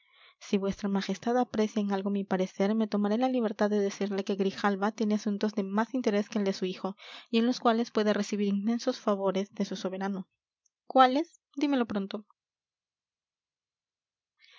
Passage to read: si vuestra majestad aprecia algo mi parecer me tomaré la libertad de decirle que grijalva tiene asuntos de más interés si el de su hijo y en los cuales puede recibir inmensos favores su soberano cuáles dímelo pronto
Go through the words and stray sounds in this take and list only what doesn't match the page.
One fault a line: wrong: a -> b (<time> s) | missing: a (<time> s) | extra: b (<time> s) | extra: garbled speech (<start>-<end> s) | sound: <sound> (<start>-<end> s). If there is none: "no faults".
extra: en (1.8 s)
wrong: si -> que (6.3 s)
extra: de (9.5 s)